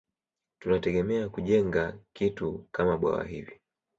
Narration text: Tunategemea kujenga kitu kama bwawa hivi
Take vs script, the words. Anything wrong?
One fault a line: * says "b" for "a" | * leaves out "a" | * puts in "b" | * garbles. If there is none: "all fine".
all fine